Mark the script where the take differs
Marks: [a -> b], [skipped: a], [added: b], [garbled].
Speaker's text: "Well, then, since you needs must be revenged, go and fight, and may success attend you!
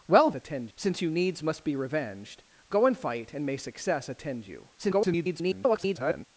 "Well, [then, -> attend] since you needs must be revenged, go and fight, and may success attend you! [garbled]